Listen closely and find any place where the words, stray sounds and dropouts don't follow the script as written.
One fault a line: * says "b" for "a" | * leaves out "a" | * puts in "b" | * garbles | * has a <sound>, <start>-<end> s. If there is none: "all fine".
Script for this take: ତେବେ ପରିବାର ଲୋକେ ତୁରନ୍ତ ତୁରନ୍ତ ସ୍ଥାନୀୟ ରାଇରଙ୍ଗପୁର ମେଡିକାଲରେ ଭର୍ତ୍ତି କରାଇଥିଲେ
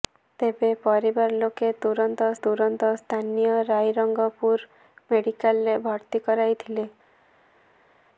all fine